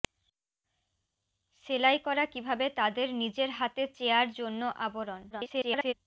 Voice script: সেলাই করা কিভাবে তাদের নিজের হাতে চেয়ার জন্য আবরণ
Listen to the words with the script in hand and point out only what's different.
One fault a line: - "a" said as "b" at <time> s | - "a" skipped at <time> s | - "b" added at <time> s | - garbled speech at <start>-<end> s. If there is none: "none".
- garbled speech at 5.3-5.9 s